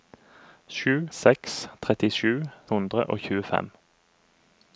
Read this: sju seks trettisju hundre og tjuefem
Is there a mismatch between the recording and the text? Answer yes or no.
no